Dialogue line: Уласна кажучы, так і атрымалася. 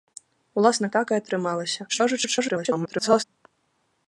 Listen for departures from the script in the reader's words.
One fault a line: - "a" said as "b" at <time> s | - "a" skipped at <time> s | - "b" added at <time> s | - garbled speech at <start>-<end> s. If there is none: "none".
- "кажучы" skipped at 0.9 s
- garbled speech at 1.9-3.2 s